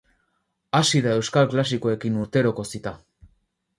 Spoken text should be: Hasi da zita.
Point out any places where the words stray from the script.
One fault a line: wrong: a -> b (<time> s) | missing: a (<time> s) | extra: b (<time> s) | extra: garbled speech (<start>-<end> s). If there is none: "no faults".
extra: euskal klasikoekin urteroko (1.2 s)